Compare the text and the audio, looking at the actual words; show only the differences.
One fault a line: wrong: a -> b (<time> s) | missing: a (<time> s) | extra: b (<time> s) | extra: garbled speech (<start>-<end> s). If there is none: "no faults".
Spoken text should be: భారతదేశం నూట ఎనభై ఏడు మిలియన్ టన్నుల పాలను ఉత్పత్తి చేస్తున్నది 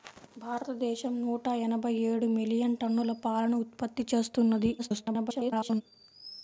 extra: garbled speech (4.8-5.8 s)